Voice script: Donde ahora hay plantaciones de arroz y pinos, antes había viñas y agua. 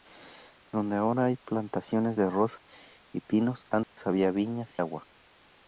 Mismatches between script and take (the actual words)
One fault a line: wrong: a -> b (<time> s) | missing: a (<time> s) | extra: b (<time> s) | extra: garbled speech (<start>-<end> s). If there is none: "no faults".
missing: y (4.8 s)